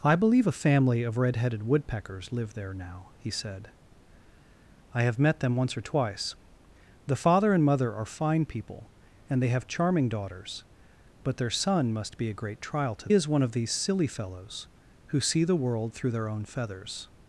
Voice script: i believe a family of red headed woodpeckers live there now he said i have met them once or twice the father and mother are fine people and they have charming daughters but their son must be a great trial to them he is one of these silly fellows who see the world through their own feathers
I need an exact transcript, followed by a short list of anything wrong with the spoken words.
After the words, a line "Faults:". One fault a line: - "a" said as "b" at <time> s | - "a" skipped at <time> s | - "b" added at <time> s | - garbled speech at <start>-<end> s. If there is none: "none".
i believe a family of red headed woodpeckers live there now he said i have met them once or twice the father and mother are fine people and they have charming daughters but their son must be a great trial to is one of these silly fellows who see the world through their own feathers
Faults:
- "them he" skipped at 13.1 s